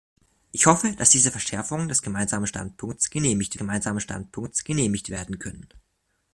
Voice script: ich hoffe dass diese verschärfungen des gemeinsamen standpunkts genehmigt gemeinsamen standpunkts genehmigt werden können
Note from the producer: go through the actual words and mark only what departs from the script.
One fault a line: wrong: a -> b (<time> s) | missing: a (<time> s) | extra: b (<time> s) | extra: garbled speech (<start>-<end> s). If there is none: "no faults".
no faults